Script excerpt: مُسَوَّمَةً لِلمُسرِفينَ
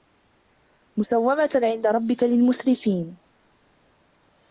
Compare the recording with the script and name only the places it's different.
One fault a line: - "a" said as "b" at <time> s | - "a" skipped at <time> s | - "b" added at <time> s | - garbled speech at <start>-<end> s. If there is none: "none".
- "عِندَ رَبِّكَ" added at 1.6 s